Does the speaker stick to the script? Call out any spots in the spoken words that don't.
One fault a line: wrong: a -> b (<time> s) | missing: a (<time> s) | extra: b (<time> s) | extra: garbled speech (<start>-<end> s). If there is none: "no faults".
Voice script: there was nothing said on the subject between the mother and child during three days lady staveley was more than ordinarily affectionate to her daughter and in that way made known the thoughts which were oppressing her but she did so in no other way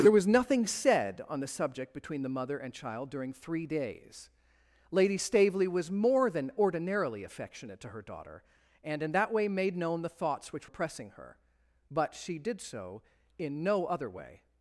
missing: were (10.7 s)